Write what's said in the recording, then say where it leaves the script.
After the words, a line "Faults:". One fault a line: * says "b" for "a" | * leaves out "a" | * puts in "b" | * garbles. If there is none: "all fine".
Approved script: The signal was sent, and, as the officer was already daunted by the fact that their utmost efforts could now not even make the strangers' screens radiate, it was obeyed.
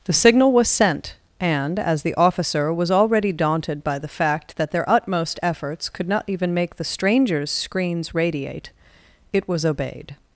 The signal was sent, and, as the officer was already daunted by the fact that their utmost efforts could not even make the strangers' screens radiate, it was obeyed.
Faults:
* leaves out "now"